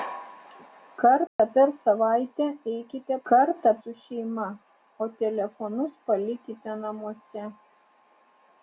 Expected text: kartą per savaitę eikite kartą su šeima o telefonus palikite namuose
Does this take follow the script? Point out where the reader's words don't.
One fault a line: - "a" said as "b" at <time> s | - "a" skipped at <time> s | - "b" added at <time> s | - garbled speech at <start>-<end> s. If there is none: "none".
none